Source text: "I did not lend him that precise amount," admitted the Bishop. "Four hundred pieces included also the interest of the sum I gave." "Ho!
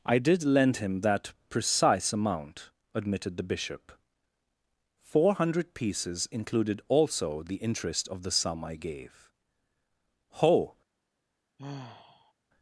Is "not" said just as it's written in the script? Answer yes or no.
no